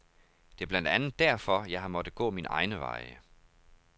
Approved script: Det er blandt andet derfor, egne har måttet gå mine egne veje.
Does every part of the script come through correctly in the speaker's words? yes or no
no